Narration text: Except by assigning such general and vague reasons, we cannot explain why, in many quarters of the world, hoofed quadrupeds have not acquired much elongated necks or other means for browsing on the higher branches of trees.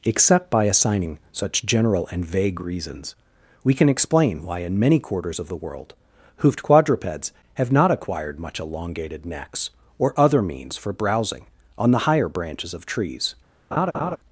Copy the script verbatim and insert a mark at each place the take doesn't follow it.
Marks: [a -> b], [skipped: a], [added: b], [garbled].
Except by assigning such general and vague reasons, we [cannot -> can] explain why, in many quarters of the world, hoofed quadrupeds have not acquired much elongated necks or other means for browsing on the higher branches of trees.